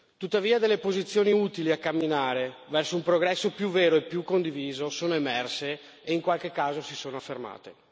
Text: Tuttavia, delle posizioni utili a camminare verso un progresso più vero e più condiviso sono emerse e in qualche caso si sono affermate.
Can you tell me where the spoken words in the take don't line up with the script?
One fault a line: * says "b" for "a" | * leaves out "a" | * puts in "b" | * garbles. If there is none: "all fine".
all fine